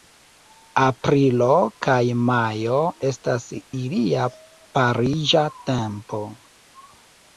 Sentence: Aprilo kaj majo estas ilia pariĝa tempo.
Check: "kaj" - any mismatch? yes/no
no